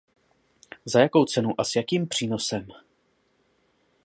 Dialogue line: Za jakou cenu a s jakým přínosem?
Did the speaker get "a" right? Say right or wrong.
right